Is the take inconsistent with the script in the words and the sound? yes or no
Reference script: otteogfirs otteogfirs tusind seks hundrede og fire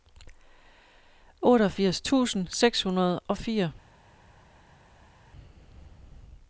yes